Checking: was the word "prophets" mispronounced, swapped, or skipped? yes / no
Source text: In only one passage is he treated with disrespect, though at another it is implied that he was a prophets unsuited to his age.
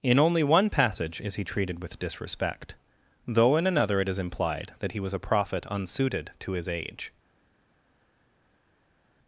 yes